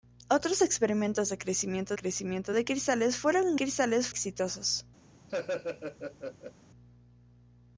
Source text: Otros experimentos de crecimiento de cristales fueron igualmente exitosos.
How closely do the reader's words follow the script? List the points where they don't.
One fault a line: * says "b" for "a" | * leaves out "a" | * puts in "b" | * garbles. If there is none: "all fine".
* puts in "crecimiento"
* says "cristales" for "igualmente"